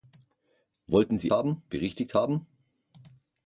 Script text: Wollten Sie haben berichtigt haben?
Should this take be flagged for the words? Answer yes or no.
no